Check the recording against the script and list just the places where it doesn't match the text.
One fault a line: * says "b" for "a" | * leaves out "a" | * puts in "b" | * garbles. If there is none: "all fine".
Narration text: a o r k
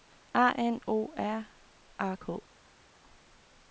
* puts in "n"
* puts in "a"